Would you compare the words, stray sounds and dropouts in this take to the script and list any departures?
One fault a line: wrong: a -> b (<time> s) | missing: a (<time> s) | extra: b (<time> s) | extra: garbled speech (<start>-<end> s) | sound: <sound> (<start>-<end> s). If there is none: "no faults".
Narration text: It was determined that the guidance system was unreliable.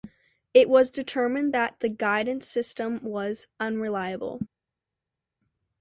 no faults